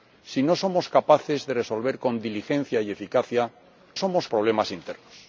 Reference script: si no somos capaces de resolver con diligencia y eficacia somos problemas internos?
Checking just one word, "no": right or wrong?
right